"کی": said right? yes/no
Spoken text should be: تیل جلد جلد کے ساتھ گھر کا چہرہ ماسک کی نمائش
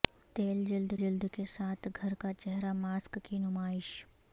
yes